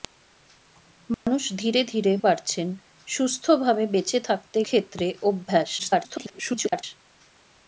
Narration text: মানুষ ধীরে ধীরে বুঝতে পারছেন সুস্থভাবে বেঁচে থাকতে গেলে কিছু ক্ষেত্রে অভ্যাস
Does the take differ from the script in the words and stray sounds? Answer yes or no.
yes